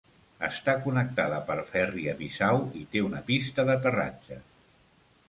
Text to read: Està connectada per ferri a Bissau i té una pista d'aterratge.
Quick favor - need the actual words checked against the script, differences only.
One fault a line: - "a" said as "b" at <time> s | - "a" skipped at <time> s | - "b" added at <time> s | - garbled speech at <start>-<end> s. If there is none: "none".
none